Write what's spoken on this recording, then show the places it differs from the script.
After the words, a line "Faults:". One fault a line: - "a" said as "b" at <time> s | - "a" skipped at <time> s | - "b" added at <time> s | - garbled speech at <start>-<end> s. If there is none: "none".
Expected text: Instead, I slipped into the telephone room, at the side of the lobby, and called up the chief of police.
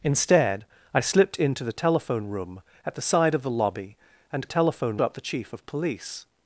Instead, I slipped into the telephone room, at the side of the lobby, and telephone up the chief of police.
Faults:
- "called" said as "telephone" at 4.5 s